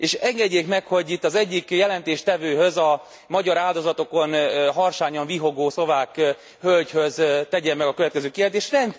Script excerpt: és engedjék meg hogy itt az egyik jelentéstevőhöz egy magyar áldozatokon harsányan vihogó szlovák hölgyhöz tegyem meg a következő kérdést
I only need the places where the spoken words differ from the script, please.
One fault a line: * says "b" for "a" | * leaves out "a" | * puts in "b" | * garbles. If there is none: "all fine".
* says "a" for "egy"